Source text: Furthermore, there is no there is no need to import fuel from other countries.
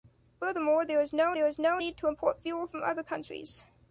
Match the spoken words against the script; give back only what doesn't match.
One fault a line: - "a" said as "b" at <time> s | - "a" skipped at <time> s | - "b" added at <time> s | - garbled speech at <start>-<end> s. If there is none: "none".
none